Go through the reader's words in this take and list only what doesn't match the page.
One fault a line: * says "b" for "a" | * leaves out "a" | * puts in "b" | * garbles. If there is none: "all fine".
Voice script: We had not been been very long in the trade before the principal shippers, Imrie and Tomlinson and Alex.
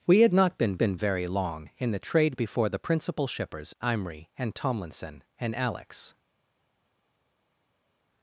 all fine